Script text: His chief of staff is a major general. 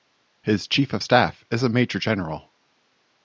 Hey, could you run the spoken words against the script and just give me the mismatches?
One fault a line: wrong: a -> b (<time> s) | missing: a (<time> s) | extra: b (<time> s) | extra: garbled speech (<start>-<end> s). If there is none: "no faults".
no faults